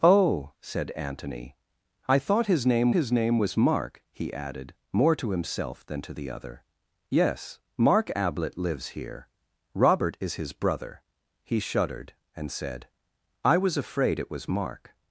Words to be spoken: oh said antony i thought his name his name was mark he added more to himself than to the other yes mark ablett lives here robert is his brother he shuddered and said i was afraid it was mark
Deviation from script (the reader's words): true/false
false